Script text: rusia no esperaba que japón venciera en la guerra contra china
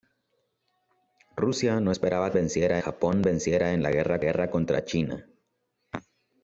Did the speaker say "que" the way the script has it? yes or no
no